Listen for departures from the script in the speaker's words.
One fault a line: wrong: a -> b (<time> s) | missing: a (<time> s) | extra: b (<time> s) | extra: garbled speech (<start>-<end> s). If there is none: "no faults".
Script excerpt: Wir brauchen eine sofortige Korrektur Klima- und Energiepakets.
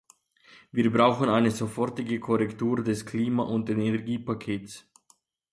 extra: des (2.8 s)